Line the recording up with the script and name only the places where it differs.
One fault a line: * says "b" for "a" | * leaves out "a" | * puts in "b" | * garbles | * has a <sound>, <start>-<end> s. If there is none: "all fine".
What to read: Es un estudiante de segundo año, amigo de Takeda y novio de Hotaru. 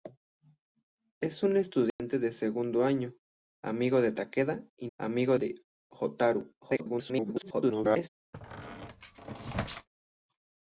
* has a dropout, 1.9-2.0 s
* says "amigo" for "novio"
* garbles
* has a squeak, 8.3-9.9 s